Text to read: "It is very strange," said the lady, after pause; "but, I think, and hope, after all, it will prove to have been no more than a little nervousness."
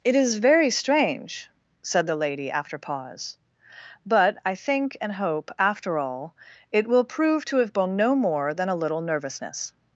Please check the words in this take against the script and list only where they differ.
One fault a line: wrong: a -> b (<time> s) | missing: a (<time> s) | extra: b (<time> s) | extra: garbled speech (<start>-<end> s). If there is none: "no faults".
no faults